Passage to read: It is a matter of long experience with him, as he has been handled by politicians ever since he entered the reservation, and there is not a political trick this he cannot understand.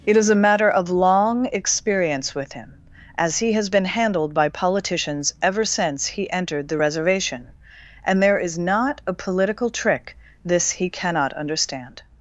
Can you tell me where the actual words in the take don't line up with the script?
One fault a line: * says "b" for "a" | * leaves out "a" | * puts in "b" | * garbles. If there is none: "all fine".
all fine